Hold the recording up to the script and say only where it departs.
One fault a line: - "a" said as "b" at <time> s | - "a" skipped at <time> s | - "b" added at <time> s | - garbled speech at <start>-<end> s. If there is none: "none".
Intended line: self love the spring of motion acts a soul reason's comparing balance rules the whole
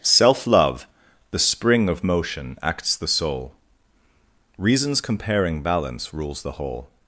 - "a" said as "the" at 3.0 s